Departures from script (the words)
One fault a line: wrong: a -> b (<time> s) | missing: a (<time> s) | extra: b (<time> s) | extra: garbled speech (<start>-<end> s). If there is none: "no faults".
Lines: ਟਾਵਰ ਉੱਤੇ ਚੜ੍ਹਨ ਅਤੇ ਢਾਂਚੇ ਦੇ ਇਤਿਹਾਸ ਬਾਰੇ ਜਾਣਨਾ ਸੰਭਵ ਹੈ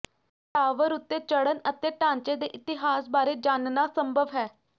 no faults